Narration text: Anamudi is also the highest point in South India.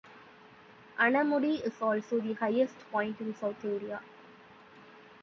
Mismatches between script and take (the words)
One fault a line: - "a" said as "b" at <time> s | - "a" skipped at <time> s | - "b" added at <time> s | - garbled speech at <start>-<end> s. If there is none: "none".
none